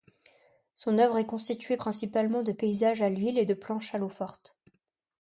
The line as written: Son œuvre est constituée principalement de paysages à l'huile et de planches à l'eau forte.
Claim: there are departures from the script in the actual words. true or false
false